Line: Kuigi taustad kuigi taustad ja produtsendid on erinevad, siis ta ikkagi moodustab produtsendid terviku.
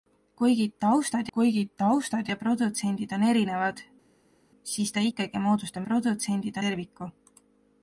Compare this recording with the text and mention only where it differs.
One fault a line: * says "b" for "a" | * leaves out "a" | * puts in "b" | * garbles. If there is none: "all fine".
all fine